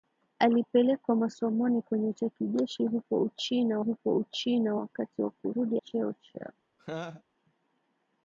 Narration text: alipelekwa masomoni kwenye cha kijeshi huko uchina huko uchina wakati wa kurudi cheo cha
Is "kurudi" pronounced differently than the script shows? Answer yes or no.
no